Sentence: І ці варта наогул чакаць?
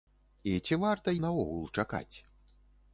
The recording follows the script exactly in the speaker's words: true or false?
true